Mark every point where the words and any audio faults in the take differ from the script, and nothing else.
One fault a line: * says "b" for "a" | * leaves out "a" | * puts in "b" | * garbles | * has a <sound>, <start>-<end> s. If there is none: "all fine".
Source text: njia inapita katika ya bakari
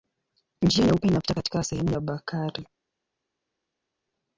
* puts in "nyeupe"
* puts in "sehemu"